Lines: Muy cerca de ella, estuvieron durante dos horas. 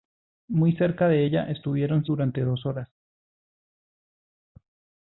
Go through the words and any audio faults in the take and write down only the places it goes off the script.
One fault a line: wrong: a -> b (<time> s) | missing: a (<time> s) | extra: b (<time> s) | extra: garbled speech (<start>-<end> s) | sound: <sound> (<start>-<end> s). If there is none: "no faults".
no faults